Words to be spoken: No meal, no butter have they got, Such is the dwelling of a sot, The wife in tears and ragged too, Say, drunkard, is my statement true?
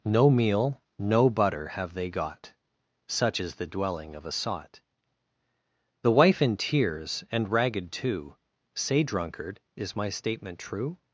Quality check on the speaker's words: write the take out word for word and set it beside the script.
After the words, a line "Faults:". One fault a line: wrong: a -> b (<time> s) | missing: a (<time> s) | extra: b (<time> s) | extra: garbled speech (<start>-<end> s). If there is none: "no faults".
No meal, no butter have they got, Such is the dwelling of a sot, The wife in tears and ragged too, Say, drunkard, is my statement true?
Faults:
no faults